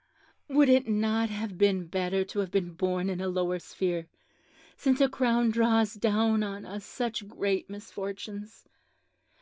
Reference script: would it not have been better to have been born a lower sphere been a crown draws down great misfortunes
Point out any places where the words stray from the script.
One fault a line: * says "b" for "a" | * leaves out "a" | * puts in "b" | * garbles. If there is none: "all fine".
* puts in "in"
* says "since" for "been"
* puts in "on us such"